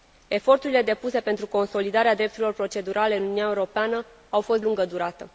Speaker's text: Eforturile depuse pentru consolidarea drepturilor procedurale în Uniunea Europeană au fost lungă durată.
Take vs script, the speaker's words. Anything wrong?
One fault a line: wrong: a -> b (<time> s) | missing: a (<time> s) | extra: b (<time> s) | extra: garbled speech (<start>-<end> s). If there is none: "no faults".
no faults